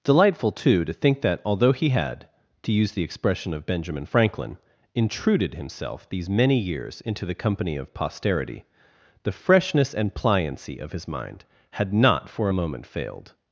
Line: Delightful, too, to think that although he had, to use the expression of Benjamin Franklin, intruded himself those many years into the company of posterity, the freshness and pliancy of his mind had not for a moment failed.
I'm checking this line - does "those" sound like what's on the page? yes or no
no